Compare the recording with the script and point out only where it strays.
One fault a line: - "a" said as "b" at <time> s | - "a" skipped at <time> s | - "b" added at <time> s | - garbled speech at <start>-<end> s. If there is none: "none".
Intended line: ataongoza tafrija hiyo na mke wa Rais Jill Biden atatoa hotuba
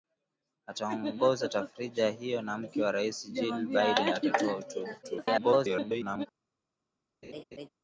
- garbled speech at 5.0-6.3 s